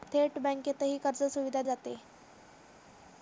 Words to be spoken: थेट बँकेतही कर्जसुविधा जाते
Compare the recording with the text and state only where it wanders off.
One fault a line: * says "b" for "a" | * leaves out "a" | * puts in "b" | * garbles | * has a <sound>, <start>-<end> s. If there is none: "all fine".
all fine